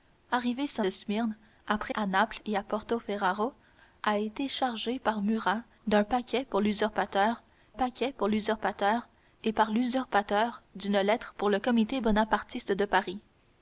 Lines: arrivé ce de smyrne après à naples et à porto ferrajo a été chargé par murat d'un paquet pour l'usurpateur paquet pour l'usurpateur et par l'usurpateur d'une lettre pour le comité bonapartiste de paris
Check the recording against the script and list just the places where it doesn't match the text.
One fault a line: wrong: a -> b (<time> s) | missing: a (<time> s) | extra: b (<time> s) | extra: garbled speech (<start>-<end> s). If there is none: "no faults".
no faults